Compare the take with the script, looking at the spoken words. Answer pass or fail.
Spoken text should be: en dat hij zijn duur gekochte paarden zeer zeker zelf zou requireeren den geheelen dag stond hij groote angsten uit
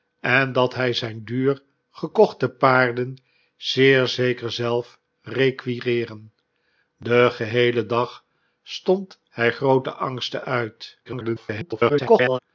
fail